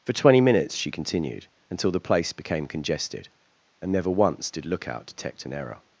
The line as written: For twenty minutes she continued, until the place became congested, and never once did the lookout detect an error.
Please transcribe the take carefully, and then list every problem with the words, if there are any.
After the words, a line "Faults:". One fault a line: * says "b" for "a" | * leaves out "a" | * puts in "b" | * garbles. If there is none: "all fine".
For twenty minutes she continued, until the place became congested, and never once did lookout detect an error.
Faults:
* leaves out "the"